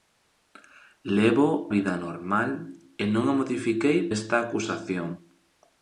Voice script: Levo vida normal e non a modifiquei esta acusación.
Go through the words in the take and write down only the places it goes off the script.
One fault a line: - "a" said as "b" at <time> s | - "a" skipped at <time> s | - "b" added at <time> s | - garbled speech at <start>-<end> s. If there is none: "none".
none